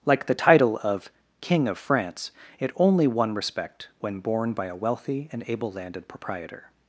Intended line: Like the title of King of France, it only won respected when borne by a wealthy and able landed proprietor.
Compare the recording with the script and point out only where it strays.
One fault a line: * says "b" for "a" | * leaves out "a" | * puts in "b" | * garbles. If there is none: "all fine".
* says "respect" for "respected"